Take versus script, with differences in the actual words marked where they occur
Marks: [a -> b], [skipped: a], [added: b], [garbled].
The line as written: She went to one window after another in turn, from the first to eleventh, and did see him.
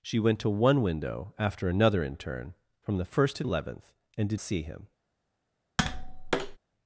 She went to one window after another in turn, from the first to eleventh, and did see him.